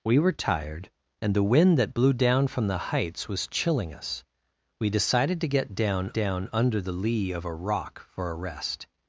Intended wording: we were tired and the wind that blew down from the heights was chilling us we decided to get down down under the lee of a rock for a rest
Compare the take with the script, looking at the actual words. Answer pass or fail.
pass